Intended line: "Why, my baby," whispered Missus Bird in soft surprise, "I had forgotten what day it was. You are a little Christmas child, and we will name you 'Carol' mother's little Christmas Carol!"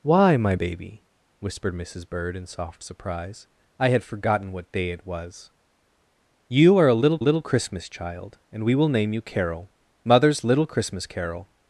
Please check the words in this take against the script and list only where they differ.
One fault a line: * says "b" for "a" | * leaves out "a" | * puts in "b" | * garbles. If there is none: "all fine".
* puts in "little"